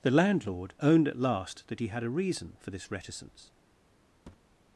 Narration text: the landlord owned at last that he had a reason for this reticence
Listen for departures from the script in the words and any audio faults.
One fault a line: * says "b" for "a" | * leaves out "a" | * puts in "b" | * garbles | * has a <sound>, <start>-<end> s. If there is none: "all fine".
* has a thud, 4.3-4.6 s